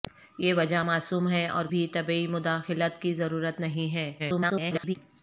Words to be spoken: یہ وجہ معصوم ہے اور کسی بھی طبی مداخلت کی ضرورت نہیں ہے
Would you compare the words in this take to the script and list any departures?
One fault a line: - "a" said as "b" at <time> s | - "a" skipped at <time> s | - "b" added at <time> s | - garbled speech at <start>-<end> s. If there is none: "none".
- "کسی" skipped at 1.6 s
- garbled speech at 4.2-5.0 s